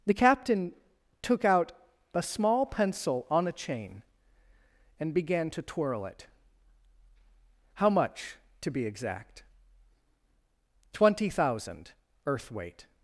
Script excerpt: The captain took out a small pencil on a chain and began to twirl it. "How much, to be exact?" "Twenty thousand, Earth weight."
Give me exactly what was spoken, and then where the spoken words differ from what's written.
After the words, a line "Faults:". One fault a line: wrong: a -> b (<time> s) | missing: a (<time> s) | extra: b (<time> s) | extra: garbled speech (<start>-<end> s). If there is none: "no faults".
The captain took out a small pencil on a chain and began to twirl it. "How much, to be exact?" "Twenty thousand, Earth weight."
Faults:
no faults